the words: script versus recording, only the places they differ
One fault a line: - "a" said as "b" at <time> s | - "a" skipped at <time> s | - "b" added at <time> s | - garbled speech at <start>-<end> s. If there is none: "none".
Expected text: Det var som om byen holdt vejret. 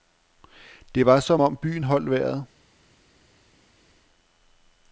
none